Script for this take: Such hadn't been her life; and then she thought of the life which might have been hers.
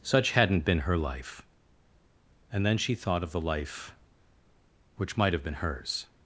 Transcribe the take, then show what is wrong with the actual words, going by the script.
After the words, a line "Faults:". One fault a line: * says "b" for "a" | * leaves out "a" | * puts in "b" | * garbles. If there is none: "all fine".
Such hadn't been her life; and then she thought of the life which might have been hers.
Faults:
all fine